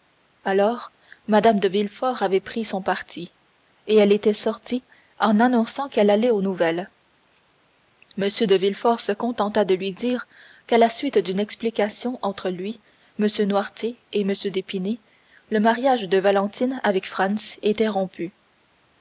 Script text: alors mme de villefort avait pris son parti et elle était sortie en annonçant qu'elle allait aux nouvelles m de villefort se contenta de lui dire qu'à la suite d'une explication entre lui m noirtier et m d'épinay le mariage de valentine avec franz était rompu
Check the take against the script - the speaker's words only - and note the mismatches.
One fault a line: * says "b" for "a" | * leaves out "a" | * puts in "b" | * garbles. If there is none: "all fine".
all fine